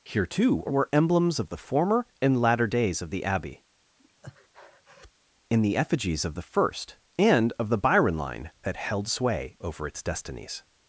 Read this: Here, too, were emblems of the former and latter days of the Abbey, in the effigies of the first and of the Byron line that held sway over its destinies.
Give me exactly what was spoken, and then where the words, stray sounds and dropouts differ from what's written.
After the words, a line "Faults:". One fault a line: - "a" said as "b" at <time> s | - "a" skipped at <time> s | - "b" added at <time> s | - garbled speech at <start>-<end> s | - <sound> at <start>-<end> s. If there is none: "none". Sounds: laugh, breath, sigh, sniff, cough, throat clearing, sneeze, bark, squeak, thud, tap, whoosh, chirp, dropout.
Here, too, were emblems of the former and latter days of the Abbey, in the effigies of the first and of the Byron line that held sway over its destinies.
Faults:
- breath at 4.0-5.1 s